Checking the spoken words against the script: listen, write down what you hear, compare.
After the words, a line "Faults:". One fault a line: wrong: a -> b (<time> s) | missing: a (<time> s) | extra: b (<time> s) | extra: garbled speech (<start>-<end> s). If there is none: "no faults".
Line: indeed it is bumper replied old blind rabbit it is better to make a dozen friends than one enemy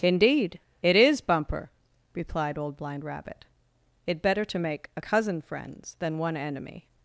indeed it is bumper replied old blind rabbit it better to make a cousin friends than one enemy
Faults:
missing: is (4.2 s)
wrong: dozen -> cousin (5.0 s)